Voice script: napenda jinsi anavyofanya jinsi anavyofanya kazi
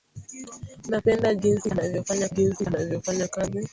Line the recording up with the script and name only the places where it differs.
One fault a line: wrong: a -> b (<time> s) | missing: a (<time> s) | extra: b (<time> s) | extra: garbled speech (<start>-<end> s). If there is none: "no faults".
no faults